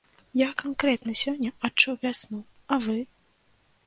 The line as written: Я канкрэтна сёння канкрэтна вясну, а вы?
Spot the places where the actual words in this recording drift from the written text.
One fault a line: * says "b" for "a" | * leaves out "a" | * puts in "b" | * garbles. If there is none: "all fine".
* says "адчуў" for "канкрэтна"